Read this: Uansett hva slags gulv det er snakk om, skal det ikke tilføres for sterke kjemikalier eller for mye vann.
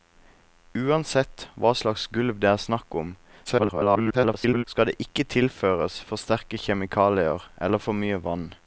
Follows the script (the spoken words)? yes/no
no